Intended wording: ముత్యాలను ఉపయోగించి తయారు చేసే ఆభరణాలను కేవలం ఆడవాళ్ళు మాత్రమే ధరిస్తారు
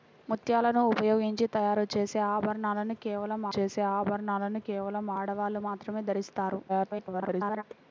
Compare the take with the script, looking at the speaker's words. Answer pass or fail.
fail